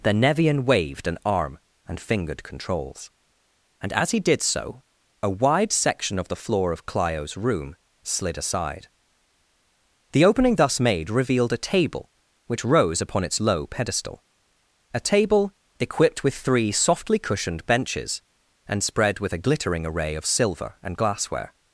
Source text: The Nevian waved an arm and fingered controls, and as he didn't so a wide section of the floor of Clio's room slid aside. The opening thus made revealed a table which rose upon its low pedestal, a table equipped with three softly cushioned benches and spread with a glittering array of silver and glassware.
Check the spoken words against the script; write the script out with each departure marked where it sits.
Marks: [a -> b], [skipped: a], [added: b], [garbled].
The Nevian waved an arm and fingered controls, and as he [didn't -> did] so a wide section of the floor of Clio's room slid aside. The opening thus made revealed a table which rose upon its low pedestal, a table equipped with three softly cushioned benches and spread with a glittering array of silver and glassware.